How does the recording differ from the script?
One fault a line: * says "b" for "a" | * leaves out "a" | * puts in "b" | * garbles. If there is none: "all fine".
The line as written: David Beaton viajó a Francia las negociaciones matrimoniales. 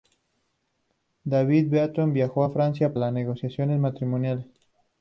all fine